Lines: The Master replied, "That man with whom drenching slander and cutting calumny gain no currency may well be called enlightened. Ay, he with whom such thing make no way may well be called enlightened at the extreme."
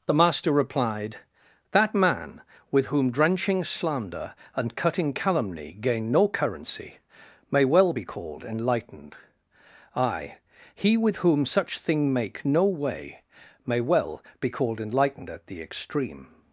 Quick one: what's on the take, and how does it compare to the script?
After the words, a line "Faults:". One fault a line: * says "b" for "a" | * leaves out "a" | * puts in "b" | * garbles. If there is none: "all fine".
The Master replied, "That man with whom drenching slander and cutting calumny gain no currency may well be called enlightened. Ay, he with whom such thing make no way may well be called enlightened at the extreme."
Faults:
all fine